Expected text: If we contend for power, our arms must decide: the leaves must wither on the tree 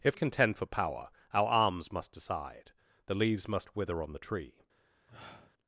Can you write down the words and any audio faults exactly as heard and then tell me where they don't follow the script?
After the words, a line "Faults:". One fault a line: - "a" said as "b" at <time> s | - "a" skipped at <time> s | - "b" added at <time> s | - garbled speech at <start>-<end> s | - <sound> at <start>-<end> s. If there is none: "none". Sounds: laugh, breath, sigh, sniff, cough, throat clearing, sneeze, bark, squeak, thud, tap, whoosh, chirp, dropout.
If contend for power, our arms must decide: the leaves must wither on the tree
Faults:
- "we" skipped at 0.2 s
- sniff at 5.1-5.5 s